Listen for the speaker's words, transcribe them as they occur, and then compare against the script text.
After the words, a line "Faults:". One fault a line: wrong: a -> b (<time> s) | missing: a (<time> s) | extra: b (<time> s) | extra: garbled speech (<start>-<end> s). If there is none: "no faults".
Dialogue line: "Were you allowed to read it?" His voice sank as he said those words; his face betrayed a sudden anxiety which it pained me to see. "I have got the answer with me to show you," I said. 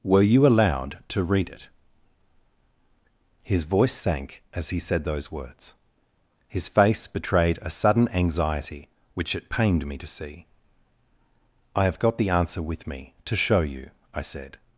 "Were you allowed to read it?" His voice sank as he said those words; his face betrayed a sudden anxiety which it pained me to see. "I have got the answer with me to show you," I said.
Faults:
no faults